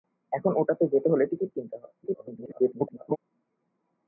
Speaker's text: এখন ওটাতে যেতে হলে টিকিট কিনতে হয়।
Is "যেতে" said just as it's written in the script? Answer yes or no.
yes